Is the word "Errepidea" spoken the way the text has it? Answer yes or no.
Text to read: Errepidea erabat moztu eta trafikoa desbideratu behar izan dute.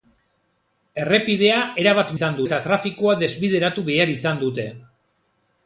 yes